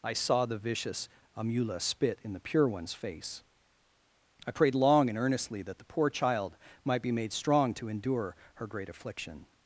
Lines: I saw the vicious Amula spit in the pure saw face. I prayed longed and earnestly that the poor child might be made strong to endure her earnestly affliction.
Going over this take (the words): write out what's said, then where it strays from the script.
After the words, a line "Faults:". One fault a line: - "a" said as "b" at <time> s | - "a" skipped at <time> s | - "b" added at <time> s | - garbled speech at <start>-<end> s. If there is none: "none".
I saw the vicious Amula spit in the pure one's face. I prayed long and earnestly that the poor child might be made strong to endure her great affliction.
Faults:
- "saw" said as "one's" at 2.7 s
- "longed" said as "long" at 4.7 s
- "earnestly" said as "great" at 8.7 s